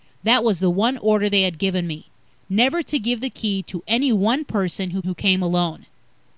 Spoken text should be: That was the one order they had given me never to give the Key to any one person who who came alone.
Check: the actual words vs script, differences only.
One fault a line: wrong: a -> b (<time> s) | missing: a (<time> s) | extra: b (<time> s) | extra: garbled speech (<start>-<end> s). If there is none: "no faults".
no faults